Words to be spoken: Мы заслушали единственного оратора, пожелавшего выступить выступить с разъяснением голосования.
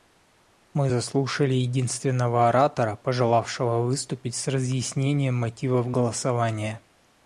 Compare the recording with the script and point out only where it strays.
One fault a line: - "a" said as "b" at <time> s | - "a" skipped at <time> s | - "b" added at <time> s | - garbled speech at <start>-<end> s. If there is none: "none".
- "выступить" skipped at 4.3 s
- "мотивов" added at 5.3 s